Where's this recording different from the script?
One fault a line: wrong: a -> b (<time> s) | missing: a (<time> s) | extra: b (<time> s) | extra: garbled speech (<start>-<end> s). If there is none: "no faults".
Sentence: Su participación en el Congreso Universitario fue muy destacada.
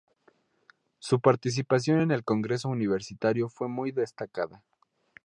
no faults